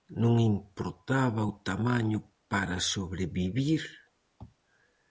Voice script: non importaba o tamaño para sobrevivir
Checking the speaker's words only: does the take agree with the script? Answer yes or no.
yes